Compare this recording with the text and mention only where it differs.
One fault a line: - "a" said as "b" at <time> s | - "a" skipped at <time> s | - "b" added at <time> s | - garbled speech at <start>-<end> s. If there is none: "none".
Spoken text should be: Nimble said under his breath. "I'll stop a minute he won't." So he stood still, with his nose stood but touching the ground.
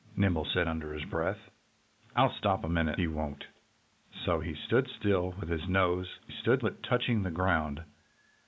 none